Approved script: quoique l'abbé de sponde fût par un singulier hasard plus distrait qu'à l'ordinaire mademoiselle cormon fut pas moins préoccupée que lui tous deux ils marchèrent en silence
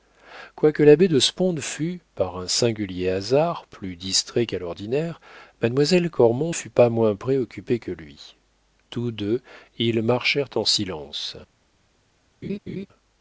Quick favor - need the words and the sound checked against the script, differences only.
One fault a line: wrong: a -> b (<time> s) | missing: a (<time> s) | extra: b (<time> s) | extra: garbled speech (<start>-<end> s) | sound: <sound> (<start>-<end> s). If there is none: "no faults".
sound: laugh (12.4-12.9 s)